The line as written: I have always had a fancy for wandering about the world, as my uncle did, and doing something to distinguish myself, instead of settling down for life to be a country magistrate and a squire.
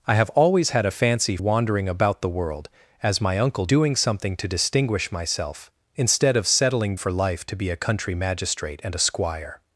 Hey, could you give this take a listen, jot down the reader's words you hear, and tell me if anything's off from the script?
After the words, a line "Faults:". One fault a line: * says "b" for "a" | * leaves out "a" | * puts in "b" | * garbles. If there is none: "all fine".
I have always had a fancy wandering about the world, as my uncle doing something to distinguish myself, instead of settling for life to be a country magistrate and a squire.
Faults:
* leaves out "for"
* leaves out "did and"
* leaves out "down"